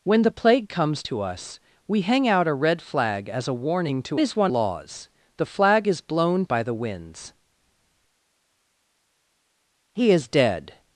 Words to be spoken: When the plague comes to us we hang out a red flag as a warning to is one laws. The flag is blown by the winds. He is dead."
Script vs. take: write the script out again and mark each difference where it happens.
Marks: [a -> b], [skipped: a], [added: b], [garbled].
When the plague comes to us we hang out a red flag as a warning to is one laws. The flag is blown by the winds. He is dead."